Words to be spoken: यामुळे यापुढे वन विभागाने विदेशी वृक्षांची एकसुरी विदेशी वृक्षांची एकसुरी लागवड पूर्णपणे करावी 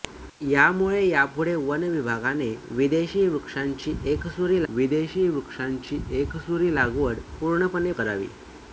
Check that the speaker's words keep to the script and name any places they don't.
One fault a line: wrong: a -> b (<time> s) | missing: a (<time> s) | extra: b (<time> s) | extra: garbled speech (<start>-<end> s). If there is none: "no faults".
no faults